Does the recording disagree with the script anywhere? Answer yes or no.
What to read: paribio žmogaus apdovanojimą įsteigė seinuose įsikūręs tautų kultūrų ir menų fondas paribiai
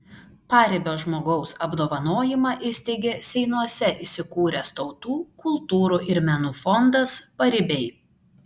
no